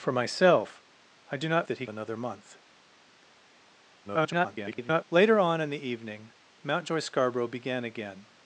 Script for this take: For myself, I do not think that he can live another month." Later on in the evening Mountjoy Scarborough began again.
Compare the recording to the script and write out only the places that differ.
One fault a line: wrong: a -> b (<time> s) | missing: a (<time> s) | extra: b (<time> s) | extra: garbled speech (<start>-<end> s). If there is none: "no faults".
missing: think (1.7 s)
missing: can live (1.9 s)
extra: garbled speech (4.0-5.0 s)